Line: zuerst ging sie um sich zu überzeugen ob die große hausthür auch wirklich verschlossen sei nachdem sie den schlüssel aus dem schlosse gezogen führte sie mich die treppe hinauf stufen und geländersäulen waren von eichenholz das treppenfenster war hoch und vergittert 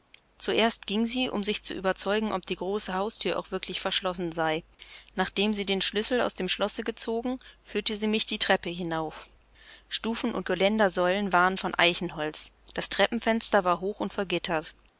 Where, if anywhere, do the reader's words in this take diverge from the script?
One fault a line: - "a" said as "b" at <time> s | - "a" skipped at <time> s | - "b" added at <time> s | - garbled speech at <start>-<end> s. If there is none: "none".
none